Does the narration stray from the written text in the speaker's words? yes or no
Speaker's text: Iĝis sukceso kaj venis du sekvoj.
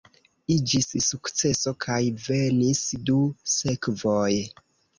no